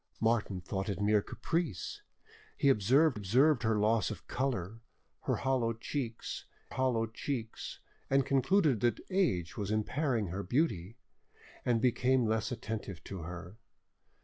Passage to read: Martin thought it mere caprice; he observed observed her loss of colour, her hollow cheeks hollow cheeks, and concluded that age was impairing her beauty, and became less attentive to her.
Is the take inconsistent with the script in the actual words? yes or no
no